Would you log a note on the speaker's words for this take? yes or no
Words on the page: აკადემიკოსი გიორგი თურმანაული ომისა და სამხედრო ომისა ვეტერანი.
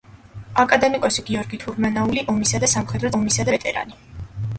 no